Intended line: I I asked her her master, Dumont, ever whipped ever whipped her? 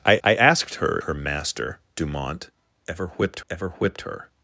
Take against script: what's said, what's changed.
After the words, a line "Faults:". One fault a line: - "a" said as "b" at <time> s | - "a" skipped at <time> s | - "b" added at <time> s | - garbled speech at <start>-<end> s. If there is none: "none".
I I asked her her master, Dumont, ever whipped ever whipped her?
Faults:
none